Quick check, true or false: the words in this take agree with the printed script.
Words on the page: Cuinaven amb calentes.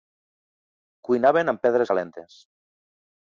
false